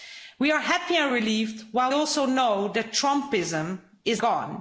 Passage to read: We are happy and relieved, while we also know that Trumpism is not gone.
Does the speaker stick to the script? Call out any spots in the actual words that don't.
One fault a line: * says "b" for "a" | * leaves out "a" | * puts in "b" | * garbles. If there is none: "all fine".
* leaves out "we"
* leaves out "not"